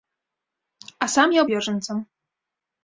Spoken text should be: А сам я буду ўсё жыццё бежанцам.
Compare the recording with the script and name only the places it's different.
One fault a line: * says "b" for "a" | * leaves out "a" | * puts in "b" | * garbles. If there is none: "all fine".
* leaves out "буду ўсё жыццё"